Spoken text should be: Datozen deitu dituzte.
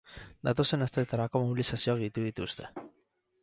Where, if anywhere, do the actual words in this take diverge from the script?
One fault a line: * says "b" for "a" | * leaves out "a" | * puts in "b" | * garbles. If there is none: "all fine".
* puts in "asteetarako mobilizazioak"